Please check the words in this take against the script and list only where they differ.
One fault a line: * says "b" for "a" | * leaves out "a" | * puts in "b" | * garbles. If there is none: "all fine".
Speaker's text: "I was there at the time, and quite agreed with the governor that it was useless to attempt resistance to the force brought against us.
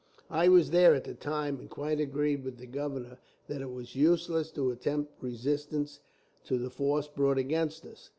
all fine